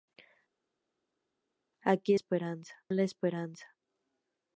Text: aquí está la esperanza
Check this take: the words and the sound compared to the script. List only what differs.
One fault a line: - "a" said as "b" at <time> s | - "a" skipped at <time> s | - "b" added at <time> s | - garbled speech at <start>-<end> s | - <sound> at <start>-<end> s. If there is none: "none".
- "está" said as "esperanza" at 2.1 s